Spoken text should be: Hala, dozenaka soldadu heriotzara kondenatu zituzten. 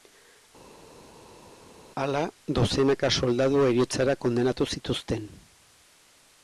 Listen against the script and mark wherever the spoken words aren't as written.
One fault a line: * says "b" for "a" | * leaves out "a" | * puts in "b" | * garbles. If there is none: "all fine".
all fine